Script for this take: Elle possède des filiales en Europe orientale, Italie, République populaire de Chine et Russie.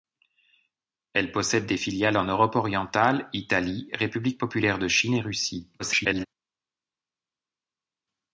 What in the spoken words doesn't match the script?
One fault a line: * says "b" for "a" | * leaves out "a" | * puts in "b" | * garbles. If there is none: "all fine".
* garbles